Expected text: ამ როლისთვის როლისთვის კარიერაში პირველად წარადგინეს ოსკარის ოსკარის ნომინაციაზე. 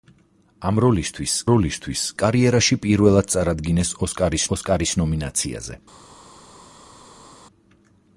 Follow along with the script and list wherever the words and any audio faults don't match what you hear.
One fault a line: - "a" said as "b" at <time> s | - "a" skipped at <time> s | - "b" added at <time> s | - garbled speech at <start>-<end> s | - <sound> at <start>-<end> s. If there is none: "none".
none